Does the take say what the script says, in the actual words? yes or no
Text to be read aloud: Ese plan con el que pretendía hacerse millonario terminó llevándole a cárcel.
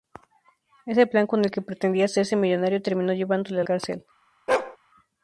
yes